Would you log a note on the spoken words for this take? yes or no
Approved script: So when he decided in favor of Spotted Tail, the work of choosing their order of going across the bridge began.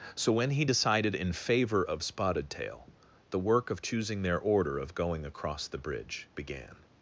no